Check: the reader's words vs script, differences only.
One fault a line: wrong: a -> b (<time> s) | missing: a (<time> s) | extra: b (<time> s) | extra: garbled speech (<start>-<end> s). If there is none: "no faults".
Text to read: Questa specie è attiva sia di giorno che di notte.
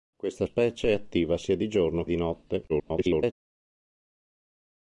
missing: che (2.0 s)
extra: garbled speech (2.7-3.3 s)